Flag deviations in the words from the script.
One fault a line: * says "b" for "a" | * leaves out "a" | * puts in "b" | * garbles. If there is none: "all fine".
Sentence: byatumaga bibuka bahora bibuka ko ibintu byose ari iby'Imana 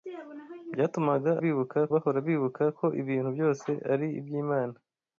all fine